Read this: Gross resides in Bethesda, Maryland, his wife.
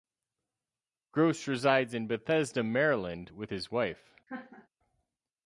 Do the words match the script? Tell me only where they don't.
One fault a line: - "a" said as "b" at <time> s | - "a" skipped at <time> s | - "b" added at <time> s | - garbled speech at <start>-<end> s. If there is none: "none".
- "with" added at 3.3 s